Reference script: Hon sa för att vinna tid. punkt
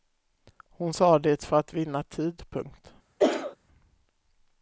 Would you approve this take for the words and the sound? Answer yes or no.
no